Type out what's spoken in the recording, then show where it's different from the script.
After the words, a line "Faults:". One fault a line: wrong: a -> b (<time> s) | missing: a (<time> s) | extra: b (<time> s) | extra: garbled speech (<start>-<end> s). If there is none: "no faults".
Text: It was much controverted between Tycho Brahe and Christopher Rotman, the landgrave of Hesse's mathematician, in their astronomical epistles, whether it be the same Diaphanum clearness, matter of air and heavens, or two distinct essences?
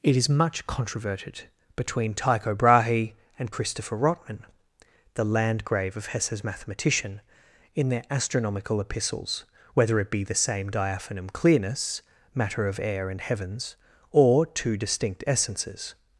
It is much controverted between Tycho Brahe and Christopher Rotman, the landgrave of Hesse's mathematician, in their astronomical epistles, whether it be the same Diaphanum clearness, matter of air and heavens, or two distinct essences?
Faults:
wrong: was -> is (0.2 s)